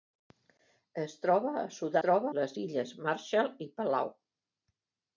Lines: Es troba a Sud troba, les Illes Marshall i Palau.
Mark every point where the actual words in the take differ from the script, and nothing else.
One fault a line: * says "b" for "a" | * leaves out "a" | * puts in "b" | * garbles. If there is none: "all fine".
all fine